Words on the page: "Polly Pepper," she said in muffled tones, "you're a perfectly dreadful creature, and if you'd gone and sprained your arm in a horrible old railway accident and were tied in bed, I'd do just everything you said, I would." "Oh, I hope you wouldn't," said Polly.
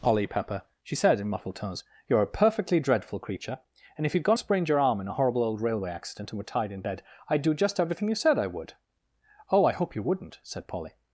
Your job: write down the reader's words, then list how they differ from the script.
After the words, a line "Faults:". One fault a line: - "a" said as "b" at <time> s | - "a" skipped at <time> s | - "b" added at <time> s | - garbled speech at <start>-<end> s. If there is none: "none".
"Polly Pepper," she said in muffled tones, "you're a perfectly dreadful creature, and if you'd gone sprained your arm in a horrible old railway accident and were tied in bed, I'd do just everything you said, I would." "Oh, I hope you wouldn't," said Polly.
Faults:
- "and" skipped at 4.4 s